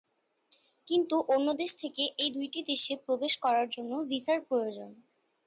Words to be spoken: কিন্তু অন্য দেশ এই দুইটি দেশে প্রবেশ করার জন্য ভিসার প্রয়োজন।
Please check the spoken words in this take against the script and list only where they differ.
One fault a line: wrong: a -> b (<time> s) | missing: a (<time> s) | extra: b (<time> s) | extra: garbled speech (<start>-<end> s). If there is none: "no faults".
extra: থেকে (1.8 s)